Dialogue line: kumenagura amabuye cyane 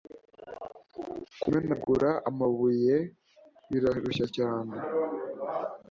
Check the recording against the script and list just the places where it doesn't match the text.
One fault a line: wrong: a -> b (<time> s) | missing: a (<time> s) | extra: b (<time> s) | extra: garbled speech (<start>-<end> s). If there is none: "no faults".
extra: birarushya (3.7 s)